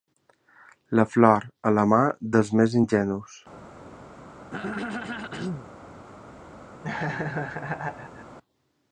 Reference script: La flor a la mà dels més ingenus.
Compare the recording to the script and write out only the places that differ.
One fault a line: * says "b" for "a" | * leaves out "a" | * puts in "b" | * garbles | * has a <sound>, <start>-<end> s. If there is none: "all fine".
* has a throat clearing, 4.4-5.7 s
* has a laugh, 6.8-8.4 s